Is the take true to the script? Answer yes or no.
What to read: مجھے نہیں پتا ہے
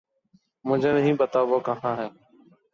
no